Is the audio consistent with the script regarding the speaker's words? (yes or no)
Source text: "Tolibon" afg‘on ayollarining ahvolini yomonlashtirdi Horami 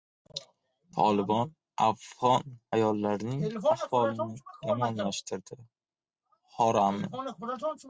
yes